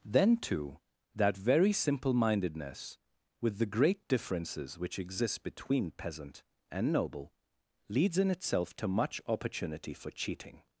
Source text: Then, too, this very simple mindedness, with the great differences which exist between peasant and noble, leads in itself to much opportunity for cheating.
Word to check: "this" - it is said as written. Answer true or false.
false